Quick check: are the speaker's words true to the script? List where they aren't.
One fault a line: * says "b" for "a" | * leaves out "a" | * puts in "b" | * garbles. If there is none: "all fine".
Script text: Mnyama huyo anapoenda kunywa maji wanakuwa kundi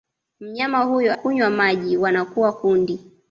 * leaves out "anapoenda"